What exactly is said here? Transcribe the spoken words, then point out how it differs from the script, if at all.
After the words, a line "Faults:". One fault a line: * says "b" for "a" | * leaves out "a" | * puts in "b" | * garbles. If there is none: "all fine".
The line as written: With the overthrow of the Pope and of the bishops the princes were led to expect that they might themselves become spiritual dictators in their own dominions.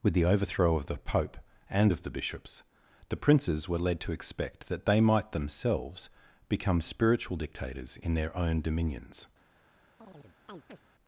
With the overthrow of the Pope and of the bishops the princes were led to expect that they might themselves become spiritual dictators in their own dominions.
Faults:
all fine